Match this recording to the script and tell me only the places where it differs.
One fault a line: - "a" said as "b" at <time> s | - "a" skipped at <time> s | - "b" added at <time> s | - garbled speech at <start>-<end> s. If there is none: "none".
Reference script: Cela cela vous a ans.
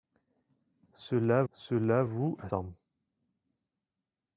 none